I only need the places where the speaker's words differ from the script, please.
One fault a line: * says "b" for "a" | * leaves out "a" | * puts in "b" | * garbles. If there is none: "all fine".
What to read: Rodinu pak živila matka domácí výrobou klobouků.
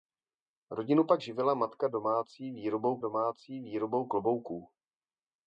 * puts in "domácí výrobou"